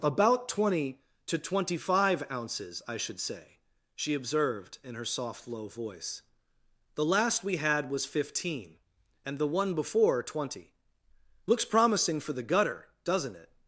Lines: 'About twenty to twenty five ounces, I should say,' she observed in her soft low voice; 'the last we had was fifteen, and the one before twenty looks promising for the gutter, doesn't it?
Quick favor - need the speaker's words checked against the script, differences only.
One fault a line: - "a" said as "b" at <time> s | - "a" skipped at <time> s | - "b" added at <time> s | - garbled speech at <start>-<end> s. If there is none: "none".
none